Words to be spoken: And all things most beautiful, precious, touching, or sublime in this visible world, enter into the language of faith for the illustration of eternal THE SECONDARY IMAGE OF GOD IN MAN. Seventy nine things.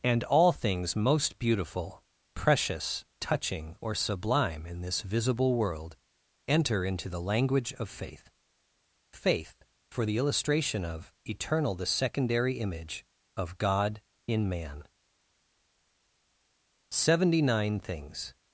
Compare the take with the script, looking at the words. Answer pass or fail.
fail